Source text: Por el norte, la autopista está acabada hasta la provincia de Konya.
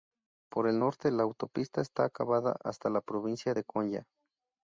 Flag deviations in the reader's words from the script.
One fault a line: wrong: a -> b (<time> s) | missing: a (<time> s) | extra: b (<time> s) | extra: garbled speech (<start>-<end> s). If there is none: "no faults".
no faults